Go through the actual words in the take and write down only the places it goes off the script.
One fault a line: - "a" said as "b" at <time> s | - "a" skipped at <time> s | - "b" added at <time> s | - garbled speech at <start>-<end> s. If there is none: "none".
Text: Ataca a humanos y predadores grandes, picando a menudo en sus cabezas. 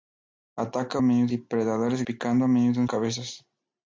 - "humanos" said as "menudo" at 1.0 s
- "grandes" skipped at 2.0 s
- "sus" skipped at 2.9 s